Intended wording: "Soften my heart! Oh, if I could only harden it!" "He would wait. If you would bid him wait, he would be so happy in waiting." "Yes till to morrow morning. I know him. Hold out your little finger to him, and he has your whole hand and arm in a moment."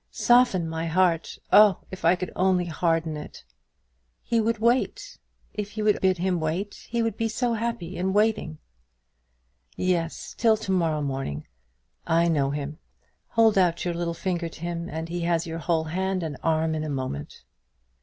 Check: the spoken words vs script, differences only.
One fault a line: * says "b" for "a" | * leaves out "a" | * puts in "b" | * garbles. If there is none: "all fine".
all fine